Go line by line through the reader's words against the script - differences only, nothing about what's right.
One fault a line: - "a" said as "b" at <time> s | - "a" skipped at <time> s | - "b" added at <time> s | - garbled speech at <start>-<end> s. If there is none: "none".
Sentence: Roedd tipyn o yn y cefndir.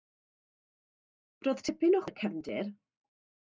none